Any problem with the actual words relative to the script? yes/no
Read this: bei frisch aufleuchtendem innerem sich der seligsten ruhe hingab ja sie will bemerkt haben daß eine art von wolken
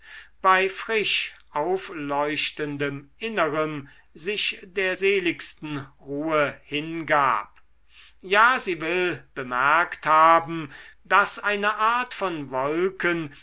no